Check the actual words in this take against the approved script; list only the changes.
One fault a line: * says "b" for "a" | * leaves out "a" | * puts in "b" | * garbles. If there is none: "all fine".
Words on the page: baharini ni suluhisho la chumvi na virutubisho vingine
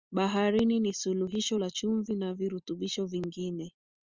all fine